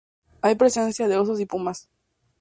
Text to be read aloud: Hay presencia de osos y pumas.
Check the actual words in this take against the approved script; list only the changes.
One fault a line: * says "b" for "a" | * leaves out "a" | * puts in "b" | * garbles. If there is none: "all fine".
all fine